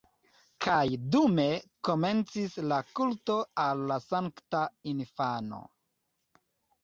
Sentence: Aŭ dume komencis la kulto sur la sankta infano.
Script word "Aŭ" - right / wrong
wrong